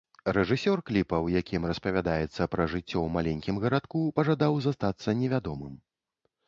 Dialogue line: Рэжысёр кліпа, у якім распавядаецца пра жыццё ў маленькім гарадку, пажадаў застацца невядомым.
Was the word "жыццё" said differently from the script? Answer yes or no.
no